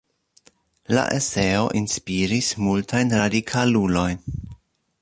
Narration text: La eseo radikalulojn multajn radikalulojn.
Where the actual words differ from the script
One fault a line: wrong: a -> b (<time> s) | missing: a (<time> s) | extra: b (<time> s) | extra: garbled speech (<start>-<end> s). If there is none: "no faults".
wrong: radikalulojn -> inspiris (1.8 s)